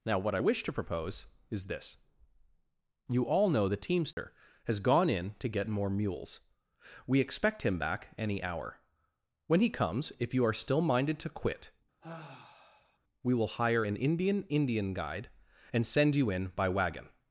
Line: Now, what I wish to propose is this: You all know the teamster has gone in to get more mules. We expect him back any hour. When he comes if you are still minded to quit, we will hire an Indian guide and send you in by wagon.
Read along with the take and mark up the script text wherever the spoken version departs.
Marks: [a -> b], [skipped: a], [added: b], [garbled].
Now, what I wish to propose is this: You all know the teamster has gone in to get more mules. We expect him back any hour. When he comes if you are still minded to quit, we will hire an Indian [added: Indian] guide and send you in by wagon.